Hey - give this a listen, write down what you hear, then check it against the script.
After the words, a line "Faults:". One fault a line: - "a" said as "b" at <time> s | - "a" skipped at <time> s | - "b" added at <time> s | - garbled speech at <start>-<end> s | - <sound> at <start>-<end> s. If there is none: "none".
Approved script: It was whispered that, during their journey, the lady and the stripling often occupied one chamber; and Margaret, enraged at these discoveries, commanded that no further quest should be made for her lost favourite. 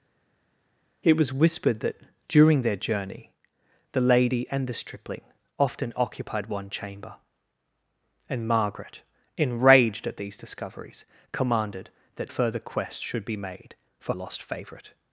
It was whispered that, during their journey, the lady and the stripling often occupied one chamber; and Margaret, enraged at these discoveries, commanded that further quest should be made for lost favourite.
Faults:
- "no" skipped at 12.3 s
- "her" skipped at 14.1 s